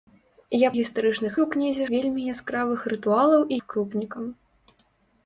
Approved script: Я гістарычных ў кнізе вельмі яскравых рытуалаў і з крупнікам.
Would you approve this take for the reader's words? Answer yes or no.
yes